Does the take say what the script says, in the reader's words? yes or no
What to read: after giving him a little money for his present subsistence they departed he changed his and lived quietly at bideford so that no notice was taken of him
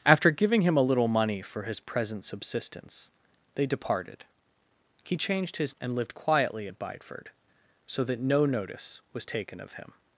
yes